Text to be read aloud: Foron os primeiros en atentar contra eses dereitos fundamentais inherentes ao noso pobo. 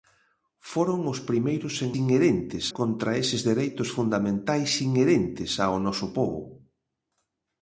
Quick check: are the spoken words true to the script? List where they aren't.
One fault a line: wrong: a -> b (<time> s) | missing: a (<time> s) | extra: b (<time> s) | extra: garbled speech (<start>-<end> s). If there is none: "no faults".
wrong: atentar -> inherentes (2.0 s)